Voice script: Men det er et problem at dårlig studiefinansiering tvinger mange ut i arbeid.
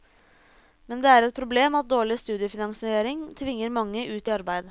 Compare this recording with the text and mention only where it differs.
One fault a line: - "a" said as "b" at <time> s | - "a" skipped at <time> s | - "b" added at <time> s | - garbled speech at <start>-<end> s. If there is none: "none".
none